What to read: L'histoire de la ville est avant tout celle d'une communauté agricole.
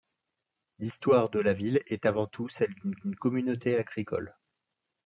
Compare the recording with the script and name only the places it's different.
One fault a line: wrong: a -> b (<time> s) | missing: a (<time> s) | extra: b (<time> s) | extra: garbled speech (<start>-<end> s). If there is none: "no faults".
extra: d'une (2.9 s)